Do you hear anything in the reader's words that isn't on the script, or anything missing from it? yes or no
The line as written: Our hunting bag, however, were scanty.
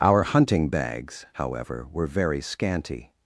yes